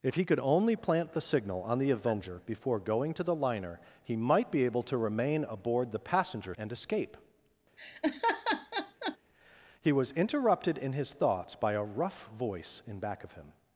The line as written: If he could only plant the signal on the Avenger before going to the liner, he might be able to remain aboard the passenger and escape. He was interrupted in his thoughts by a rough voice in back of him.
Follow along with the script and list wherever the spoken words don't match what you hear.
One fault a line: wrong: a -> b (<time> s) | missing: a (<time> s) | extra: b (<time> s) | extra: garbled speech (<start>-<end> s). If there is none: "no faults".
no faults